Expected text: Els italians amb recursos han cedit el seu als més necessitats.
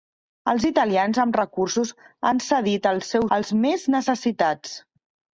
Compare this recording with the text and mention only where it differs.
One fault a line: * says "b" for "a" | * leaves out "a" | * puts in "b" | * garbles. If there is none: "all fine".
all fine